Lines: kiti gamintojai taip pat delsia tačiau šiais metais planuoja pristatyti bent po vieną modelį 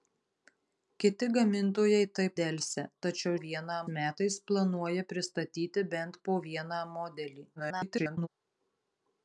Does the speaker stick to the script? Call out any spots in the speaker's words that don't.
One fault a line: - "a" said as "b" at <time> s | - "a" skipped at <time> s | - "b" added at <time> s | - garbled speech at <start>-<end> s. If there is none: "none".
- "pat" skipped at 2.3 s
- "šiais" said as "vieną" at 3.5 s
- garbled speech at 7.6-8.3 s